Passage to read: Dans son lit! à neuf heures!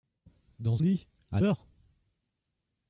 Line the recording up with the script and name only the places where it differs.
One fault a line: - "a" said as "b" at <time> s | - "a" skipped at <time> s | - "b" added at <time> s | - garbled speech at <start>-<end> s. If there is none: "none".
- "son" skipped at 0.8 s
- "neuf" skipped at 1.4 s